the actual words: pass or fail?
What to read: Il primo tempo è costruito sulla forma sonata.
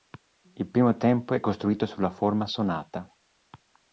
pass